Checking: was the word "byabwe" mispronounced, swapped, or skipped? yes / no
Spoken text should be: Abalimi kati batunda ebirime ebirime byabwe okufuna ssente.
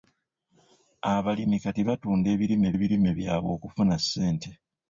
no